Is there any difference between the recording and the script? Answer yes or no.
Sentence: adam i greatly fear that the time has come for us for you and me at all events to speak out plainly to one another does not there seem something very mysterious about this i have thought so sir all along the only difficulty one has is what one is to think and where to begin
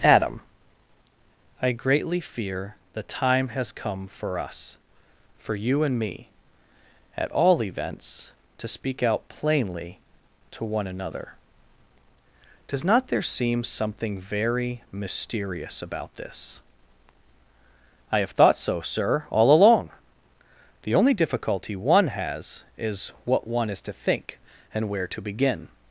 yes